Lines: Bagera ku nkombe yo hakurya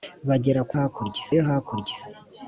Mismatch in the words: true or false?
true